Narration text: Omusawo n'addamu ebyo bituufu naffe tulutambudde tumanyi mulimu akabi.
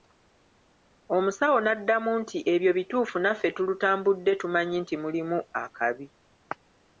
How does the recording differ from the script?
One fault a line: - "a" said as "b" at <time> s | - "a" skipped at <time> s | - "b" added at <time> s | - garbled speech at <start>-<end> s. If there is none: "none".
- "nti" added at 2.2 s
- "nti" added at 4.8 s